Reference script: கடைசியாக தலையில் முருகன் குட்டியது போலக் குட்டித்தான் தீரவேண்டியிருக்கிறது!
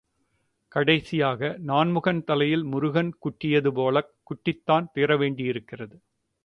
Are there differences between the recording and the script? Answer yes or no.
yes